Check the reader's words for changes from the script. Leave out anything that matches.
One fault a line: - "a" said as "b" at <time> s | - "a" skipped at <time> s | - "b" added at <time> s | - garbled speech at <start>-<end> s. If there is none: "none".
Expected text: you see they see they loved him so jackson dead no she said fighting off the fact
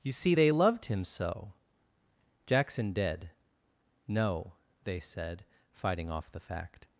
- "see they" skipped at 0.5 s
- "she" said as "they" at 4.8 s